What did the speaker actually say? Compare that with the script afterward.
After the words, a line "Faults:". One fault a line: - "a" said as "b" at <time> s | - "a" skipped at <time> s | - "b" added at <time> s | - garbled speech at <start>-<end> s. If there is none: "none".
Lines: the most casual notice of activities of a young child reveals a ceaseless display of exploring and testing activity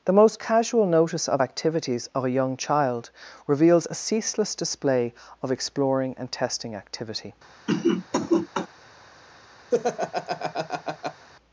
the most casual notice of activities of a young child reveals a ceaseless display of exploring and testing activity
Faults:
none